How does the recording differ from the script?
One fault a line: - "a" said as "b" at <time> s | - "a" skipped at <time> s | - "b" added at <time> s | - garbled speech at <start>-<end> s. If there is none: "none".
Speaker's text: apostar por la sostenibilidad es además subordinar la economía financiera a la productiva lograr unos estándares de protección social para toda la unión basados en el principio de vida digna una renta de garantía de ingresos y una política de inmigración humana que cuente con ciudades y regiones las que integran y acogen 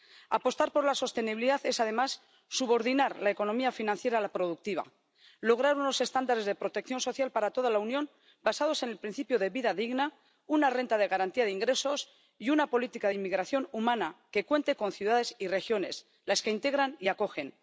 none